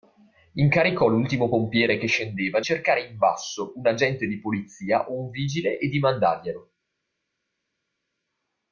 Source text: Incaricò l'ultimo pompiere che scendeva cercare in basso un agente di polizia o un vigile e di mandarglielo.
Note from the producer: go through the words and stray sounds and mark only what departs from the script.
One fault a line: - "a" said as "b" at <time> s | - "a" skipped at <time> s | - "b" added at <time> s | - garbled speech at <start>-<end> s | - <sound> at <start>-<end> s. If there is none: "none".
none